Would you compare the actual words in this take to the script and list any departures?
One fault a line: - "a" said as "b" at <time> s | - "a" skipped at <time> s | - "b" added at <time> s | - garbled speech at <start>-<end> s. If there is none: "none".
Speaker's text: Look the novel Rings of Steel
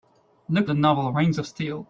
none